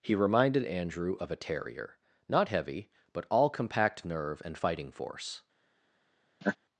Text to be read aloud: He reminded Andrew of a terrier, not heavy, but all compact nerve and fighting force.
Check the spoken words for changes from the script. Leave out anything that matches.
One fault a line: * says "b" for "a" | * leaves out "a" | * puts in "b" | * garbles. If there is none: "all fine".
all fine